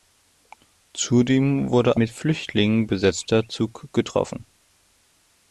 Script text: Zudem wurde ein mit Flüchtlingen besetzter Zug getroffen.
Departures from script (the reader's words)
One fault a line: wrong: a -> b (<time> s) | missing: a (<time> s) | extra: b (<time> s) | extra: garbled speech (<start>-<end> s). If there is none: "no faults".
missing: ein (2.0 s)